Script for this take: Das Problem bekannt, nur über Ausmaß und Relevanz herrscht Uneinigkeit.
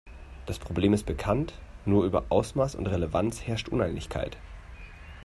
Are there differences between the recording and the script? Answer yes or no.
yes